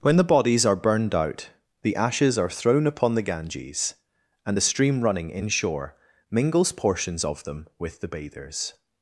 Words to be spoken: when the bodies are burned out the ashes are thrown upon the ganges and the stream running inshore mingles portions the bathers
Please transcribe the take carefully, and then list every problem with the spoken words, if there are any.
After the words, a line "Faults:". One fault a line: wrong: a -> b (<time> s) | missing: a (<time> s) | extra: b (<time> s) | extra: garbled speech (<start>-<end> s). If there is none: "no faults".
when the bodies are burned out the ashes are thrown upon the ganges and the stream running inshore mingles portions of them with the bathers
Faults:
extra: of them with (7.2 s)